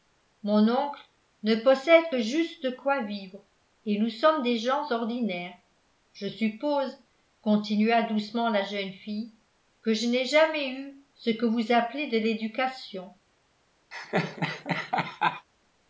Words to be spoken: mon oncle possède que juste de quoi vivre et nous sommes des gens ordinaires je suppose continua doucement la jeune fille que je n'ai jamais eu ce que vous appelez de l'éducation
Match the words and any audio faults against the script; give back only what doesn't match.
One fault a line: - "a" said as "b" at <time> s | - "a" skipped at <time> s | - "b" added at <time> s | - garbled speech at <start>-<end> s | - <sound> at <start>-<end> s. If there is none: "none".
- "ne" added at 1.4 s
- laugh at 13.9-15.5 s